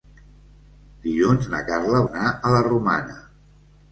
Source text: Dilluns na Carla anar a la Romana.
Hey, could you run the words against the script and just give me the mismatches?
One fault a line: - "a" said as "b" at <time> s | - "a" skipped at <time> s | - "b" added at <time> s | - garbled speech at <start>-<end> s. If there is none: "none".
none